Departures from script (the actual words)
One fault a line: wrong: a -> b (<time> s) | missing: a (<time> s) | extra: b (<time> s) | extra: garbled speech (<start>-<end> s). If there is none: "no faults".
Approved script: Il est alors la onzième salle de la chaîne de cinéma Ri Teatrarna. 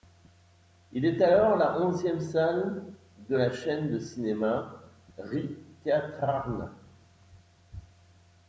no faults